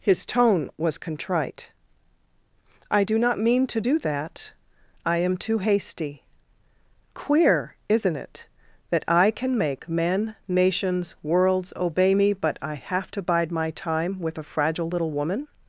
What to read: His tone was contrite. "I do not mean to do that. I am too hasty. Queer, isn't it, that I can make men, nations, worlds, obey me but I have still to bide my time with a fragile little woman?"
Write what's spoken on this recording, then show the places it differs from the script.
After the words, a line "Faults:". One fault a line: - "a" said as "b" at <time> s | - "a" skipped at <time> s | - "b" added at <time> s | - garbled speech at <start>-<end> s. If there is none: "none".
His tone was contrite. "I do not mean to do that. I am too hasty. Queer, isn't it, that I can make men, nations, worlds, obey me but I have to bide my time with a fragile little woman?"
Faults:
- "still" skipped at 13.1 s